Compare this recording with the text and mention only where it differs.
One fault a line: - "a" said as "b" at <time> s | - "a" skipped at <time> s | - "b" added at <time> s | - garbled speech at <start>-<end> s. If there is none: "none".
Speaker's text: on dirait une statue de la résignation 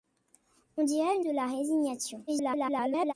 - "statue" skipped at 1.2 s
- garbled speech at 2.3-3.1 s